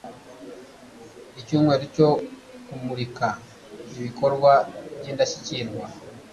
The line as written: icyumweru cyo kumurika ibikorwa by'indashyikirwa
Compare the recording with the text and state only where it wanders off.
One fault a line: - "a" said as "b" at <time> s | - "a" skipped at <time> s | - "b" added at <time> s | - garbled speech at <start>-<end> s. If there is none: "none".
none